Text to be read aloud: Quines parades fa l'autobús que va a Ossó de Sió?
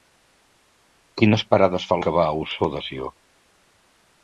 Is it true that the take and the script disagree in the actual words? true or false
true